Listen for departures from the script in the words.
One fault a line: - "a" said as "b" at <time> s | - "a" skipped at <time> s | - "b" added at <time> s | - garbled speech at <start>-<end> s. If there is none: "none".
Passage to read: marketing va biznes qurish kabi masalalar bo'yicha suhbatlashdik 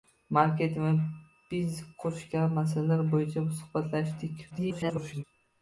- garbled speech at 4.5-5.2 s